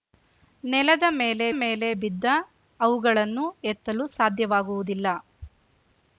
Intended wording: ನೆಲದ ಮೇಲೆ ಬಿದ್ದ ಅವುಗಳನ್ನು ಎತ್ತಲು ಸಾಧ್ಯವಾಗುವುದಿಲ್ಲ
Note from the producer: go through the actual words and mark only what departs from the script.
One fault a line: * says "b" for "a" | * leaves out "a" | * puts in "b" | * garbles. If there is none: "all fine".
* puts in "ಮೇಲೆ"